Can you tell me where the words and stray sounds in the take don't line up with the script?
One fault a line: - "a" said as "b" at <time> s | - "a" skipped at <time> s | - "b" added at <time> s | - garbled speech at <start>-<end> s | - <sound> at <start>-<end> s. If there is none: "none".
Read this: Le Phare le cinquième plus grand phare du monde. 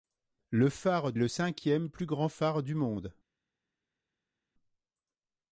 none